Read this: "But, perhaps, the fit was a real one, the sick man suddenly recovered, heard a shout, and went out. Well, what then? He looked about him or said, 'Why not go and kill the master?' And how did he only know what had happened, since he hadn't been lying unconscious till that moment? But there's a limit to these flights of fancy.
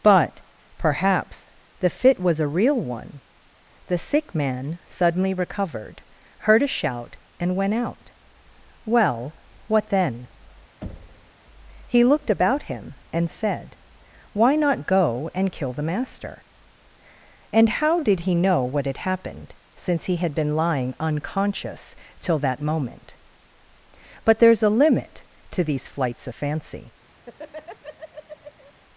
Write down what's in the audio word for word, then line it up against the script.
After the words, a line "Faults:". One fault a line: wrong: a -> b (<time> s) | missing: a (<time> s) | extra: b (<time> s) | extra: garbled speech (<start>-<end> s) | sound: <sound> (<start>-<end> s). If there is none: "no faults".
"But, perhaps, the fit was a real one, the sick man suddenly recovered, heard a shout, and went out. Well, what then? He looked about him and said, 'Why not go and kill the master?' And how did he know what had happened, since he had been lying unconscious till that moment? But there's a limit to these flights of fancy.
Faults:
sound: thud (10.8-11.3 s)
wrong: or -> and (13.1 s)
missing: only (18.3 s)
wrong: hadn't -> had (20.2 s)
sound: laugh (27.2-28.7 s)